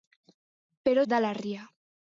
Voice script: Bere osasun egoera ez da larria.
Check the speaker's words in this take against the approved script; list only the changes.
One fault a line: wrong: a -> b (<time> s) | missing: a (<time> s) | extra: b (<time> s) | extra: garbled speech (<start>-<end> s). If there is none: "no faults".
missing: osasun egoera (1.0 s)